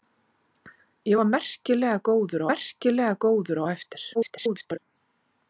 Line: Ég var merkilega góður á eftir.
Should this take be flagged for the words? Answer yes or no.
yes